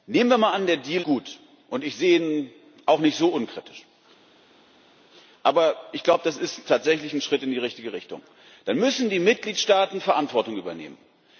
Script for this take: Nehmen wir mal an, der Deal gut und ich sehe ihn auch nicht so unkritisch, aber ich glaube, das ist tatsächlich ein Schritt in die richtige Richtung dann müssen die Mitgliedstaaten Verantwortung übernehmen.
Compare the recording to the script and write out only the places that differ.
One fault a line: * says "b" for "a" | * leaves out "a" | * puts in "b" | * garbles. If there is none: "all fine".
all fine